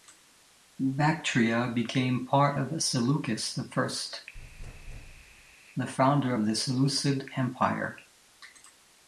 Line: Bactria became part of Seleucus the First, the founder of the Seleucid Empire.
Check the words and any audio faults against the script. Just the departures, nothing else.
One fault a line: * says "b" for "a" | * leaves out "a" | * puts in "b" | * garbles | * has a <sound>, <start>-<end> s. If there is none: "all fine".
* has a thud, 4.3-5.6 s